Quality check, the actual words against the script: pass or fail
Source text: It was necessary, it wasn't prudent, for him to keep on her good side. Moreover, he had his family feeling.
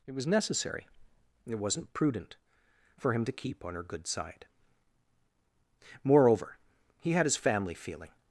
pass